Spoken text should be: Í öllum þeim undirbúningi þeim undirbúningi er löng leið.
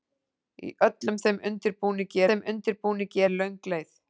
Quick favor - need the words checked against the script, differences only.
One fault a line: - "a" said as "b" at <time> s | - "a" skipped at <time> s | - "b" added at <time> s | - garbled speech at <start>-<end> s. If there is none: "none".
none